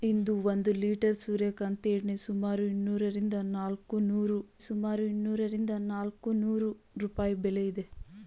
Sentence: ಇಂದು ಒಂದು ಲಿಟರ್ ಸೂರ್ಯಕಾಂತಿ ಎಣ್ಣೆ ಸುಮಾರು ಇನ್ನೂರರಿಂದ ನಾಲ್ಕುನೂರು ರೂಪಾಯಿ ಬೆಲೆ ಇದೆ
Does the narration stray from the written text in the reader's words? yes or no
yes